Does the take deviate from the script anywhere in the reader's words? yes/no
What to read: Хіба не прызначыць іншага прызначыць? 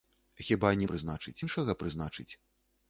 no